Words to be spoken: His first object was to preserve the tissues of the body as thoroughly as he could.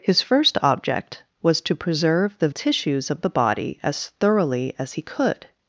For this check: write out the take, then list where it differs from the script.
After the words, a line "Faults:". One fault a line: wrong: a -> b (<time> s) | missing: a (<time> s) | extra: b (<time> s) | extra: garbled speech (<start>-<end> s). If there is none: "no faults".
His first object was to preserve the tissues of the body as thoroughly as he could.
Faults:
no faults